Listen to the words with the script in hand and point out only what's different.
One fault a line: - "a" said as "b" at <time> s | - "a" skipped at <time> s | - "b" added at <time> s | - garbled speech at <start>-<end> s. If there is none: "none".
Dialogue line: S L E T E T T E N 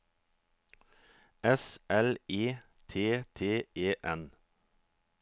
- "E T" skipped at 3.2 s